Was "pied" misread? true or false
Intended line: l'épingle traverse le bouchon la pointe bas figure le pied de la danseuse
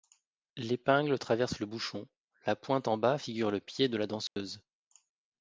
false